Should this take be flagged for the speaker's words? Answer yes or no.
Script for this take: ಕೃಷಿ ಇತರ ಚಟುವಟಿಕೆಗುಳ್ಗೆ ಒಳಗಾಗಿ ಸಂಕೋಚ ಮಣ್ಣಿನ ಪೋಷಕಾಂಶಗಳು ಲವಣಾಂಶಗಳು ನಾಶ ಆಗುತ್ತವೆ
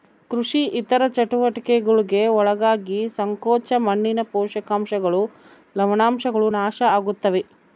no